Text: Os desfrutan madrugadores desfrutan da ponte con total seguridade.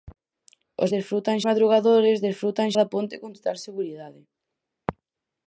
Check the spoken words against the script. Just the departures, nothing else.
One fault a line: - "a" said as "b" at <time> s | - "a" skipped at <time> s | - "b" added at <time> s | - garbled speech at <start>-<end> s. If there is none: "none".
none